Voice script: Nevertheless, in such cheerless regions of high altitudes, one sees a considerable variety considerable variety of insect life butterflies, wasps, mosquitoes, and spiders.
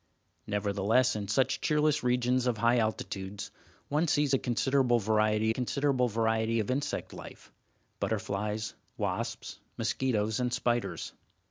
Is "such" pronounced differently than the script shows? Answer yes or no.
no